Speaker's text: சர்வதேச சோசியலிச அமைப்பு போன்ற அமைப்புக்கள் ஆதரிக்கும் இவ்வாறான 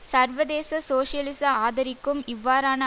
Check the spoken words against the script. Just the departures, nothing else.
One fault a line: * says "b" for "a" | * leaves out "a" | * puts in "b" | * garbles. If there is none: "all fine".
* leaves out "அமைப்பு போன்ற அமைப்புக்கள்"